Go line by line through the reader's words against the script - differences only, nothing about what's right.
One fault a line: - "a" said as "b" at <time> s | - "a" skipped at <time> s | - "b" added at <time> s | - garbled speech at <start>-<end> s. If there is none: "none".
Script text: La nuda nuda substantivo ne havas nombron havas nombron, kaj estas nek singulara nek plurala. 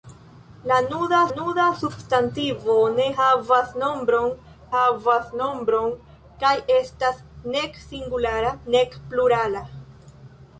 none